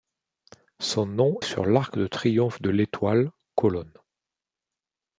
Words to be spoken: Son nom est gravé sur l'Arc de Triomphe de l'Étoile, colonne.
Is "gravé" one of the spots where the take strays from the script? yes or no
yes